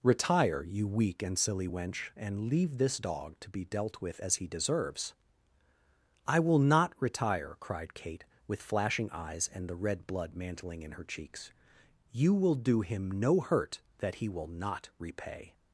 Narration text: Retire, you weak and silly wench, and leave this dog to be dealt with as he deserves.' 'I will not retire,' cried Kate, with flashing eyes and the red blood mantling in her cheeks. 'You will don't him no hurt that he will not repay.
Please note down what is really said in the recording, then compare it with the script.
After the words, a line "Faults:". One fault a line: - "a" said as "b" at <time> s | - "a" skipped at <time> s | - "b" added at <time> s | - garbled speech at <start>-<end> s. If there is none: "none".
Retire, you weak and silly wench, and leave this dog to be dealt with as he deserves.' 'I will not retire,' cried Kate, with flashing eyes and the red blood mantling in her cheeks. 'You will do him no hurt that he will not repay.
Faults:
- "don't" said as "do" at 12.6 s